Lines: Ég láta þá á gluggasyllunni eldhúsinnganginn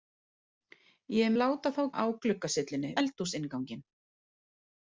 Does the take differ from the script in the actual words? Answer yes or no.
no